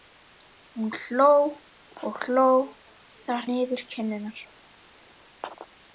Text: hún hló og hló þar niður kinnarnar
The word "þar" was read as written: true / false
true